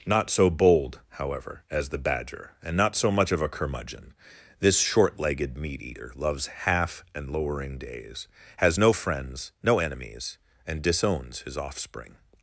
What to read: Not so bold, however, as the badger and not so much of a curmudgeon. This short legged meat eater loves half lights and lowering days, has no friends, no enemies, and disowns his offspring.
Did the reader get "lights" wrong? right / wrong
wrong